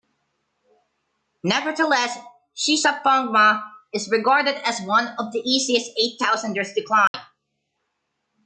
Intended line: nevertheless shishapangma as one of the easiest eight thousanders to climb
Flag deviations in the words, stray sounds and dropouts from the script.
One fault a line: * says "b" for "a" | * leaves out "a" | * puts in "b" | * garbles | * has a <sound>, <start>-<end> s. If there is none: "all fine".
* puts in "is regarded"
* has a dropout, 7.1-7.1 s